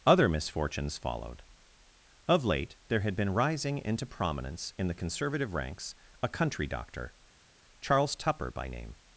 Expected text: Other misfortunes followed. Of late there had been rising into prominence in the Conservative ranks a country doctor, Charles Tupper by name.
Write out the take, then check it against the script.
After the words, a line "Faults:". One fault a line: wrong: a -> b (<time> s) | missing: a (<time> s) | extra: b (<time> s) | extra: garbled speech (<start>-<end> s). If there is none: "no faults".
Other misfortunes followed. Of late there had been rising into prominence in the Conservative ranks a country doctor, Charles Tupper by name.
Faults:
no faults